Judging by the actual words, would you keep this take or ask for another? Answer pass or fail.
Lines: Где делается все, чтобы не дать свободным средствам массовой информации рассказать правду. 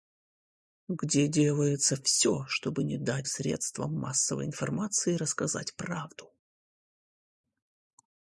fail